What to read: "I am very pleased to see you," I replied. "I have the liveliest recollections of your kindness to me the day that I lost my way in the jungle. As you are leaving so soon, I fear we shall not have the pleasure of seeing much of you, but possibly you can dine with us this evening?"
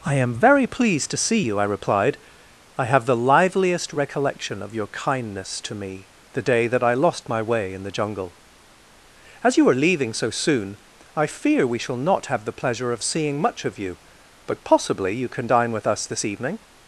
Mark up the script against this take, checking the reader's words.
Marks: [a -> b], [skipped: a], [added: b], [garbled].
"I am very pleased to see you," I replied. "I have the liveliest [recollections -> recollection] of your kindness to me the day that I lost my way in the jungle. As you are leaving so soon, I fear we shall not have the pleasure of seeing much of you, but possibly you can dine with us this evening?"